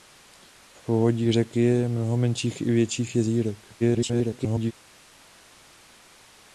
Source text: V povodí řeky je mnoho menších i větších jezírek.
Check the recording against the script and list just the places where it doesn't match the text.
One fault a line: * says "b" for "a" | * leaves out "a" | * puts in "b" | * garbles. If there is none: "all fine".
* garbles